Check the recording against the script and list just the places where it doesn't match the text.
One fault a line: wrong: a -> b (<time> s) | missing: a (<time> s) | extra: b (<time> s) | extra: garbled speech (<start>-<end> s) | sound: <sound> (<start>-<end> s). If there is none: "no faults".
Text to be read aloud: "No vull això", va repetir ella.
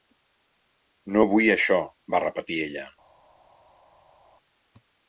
no faults